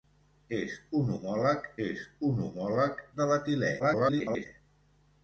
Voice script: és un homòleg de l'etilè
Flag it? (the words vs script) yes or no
yes